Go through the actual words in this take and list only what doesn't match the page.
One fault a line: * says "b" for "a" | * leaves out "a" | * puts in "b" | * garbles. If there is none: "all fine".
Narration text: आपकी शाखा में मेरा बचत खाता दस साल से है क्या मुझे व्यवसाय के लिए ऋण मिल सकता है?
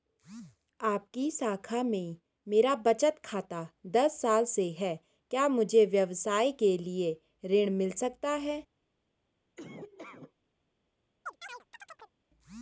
all fine